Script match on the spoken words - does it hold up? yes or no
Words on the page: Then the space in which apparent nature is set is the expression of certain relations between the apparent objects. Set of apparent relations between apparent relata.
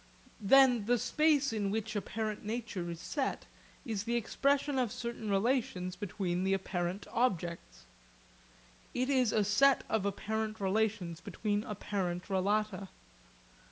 no